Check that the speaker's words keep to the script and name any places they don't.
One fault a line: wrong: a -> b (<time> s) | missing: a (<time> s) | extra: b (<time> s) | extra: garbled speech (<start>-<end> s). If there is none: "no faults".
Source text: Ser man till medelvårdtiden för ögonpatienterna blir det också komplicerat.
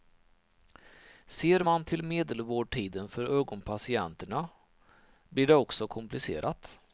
no faults